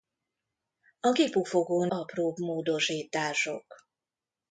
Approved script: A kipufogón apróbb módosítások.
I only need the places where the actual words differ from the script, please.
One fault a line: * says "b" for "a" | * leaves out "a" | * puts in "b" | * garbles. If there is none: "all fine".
all fine